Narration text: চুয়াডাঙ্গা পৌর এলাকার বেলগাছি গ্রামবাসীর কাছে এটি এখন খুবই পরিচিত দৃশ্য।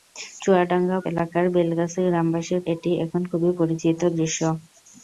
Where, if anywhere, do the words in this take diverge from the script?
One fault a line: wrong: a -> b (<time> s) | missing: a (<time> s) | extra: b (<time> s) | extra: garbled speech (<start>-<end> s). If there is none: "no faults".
missing: পৌর (1.0 s)
missing: কাছে (2.6 s)